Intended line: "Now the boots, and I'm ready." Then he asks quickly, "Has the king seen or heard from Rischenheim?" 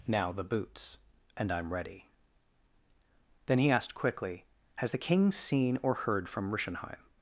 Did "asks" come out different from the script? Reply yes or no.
yes